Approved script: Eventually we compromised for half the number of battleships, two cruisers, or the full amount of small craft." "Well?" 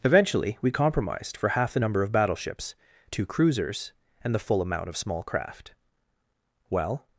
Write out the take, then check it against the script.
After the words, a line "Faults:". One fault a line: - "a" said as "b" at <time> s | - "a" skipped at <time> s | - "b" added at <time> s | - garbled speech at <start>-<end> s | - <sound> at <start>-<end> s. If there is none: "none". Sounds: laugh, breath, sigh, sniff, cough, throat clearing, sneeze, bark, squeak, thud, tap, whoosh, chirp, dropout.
Eventually we compromised for half the number of battleships, two cruisers, and the full amount of small craft." "Well?"
Faults:
- "or" said as "and" at 4.2 s